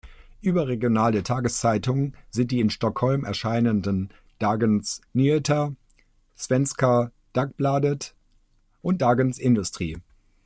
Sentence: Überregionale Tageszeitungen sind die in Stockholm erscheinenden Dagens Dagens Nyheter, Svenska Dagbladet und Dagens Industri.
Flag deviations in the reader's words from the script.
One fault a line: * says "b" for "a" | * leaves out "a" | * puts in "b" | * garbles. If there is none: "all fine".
* leaves out "Dagens"